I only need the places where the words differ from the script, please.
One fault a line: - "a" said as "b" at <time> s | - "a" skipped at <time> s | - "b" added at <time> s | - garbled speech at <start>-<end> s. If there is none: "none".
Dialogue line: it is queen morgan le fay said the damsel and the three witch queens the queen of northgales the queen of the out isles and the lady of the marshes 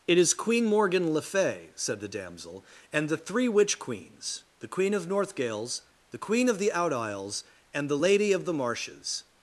none